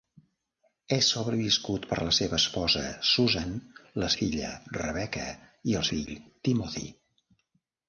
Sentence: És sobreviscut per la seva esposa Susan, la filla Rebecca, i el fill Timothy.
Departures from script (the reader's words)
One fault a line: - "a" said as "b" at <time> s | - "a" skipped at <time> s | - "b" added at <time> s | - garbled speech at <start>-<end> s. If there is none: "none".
none